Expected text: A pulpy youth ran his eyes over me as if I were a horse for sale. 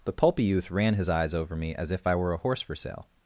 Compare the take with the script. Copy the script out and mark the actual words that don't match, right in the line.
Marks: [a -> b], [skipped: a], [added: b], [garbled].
[A -> The] pulpy youth ran his eyes over me as if I were a horse for sale.